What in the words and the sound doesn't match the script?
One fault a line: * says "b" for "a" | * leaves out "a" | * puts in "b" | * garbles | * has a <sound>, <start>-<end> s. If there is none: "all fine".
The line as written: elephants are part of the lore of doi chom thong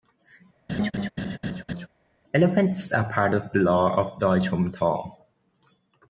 * has a laugh, 0.7-1.9 s